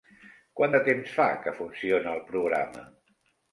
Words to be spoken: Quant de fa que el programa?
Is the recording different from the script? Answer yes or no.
yes